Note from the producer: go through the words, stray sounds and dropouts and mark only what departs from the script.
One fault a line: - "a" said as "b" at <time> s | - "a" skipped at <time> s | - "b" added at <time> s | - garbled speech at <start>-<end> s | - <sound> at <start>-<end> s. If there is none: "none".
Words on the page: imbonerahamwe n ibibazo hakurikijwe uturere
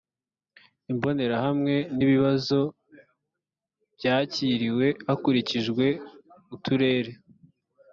- "byakiriwe" added at 4.0 s